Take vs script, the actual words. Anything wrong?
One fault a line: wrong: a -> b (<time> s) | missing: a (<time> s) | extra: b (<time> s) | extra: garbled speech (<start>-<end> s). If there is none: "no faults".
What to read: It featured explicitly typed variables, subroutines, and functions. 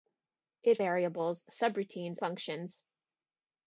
missing: featured explicitly typed (0.8 s)
missing: and (2.2 s)